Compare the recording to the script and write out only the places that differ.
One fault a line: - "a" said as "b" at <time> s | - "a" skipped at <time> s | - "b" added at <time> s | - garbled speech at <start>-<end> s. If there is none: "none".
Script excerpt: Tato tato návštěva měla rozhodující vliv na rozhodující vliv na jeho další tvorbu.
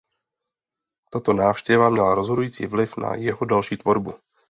- "tato" skipped at 1.3 s
- "rozhodující vliv na" skipped at 3.1 s